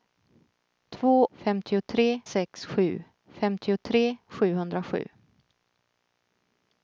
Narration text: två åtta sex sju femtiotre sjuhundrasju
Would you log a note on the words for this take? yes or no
yes